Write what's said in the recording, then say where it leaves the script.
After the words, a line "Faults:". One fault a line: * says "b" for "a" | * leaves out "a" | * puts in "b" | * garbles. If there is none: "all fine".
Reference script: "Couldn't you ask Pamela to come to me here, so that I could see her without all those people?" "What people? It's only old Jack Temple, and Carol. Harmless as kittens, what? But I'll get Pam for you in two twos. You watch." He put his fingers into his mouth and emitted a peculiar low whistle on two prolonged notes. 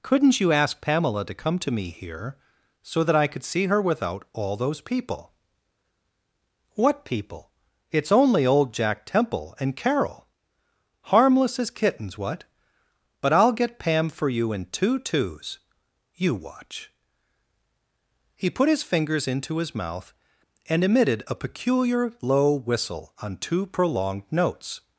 "Couldn't you ask Pamela to come to me here, so that I could see her without all those people?" "What people? It's only old Jack Temple, and Carol. Harmless as kittens, what? But I'll get Pam for you in two twos. You watch." He put his fingers into his mouth and emitted a peculiar low whistle on two prolonged notes.
Faults:
all fine